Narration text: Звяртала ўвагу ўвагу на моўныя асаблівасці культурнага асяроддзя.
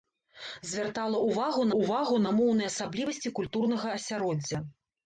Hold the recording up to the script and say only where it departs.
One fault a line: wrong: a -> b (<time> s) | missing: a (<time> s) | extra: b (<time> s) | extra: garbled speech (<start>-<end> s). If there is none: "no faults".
no faults